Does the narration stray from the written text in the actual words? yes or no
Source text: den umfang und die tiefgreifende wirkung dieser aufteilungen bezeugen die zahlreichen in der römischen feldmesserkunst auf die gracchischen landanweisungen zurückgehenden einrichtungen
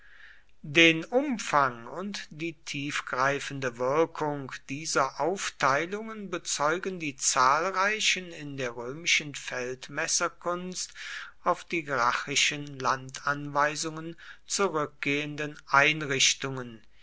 no